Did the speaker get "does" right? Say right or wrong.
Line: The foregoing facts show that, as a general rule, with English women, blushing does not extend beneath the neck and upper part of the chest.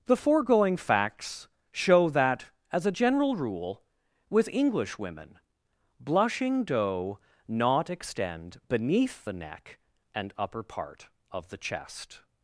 wrong